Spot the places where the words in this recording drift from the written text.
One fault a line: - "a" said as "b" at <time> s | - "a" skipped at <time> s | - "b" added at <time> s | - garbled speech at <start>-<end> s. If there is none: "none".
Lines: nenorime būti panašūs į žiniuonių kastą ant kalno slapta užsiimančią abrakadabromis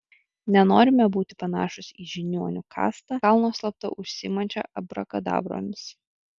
- "ant" skipped at 3.2 s